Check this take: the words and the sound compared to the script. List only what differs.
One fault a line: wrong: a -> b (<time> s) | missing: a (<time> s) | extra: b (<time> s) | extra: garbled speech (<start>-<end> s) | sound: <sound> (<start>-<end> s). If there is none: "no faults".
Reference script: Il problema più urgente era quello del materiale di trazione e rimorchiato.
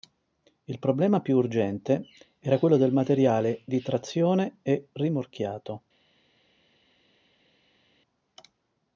no faults